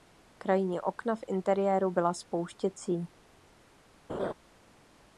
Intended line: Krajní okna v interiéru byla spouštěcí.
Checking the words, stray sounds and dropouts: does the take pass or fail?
fail